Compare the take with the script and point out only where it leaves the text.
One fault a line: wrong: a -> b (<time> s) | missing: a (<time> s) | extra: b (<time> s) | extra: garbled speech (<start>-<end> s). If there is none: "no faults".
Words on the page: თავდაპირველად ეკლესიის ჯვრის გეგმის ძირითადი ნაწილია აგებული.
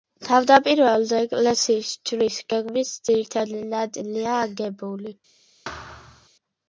no faults